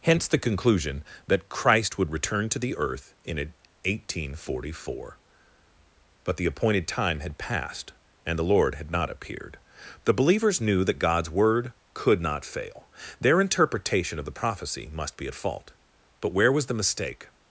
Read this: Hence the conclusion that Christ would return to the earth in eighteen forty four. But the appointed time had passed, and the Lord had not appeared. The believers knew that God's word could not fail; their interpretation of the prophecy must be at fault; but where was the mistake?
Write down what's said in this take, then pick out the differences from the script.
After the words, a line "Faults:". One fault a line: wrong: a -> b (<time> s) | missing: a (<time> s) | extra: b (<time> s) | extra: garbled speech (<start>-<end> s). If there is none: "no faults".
Hence the conclusion that Christ would return to the earth in eighteen forty four. But the appointed time had passed, and the Lord had not appeared. The believers knew that God's word could not fail; their interpretation of the prophecy must be at fault; but where was the mistake?
Faults:
no faults